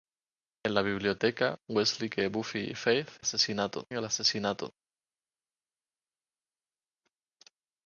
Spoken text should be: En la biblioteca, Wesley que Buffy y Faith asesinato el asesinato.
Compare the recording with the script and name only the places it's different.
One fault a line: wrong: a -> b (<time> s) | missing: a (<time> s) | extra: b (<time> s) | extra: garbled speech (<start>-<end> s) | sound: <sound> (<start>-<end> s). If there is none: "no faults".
no faults